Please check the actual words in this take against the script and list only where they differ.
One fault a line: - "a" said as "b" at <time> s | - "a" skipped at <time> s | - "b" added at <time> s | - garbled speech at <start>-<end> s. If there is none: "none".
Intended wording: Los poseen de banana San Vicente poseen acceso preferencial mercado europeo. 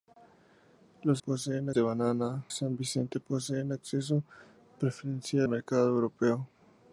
none